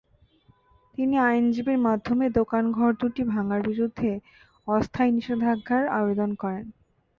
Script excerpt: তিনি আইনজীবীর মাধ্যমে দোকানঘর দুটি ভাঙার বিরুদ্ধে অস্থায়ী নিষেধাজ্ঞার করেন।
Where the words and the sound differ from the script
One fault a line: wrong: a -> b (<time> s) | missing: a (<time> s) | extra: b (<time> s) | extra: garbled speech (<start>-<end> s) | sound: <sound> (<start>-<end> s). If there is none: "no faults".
extra: আবেদন (6.0 s)